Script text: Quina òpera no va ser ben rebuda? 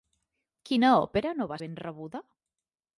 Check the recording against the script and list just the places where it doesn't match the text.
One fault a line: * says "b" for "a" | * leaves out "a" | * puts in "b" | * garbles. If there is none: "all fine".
* leaves out "ser"